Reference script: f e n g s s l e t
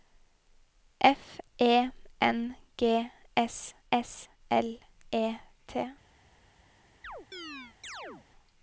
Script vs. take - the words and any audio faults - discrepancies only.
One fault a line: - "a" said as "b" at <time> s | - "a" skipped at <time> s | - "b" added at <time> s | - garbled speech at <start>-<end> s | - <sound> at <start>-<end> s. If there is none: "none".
- chirp at 7.0-8.3 s